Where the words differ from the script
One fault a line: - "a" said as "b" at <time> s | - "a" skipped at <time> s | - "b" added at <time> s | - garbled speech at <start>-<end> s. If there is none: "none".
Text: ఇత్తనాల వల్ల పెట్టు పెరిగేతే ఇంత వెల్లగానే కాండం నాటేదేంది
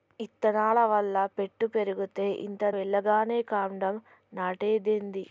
none